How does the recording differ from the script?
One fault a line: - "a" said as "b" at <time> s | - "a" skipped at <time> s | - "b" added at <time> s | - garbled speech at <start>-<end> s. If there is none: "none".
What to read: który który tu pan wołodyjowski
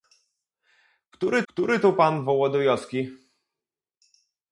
none